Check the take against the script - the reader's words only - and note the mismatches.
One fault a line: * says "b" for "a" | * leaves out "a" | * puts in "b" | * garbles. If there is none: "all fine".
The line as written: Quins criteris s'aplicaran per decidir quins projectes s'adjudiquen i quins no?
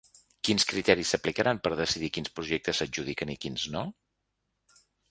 all fine